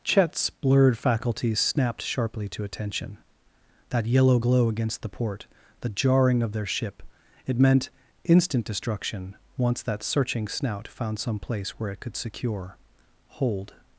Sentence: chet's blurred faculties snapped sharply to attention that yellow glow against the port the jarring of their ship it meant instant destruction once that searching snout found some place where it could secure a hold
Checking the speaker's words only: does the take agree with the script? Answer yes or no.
no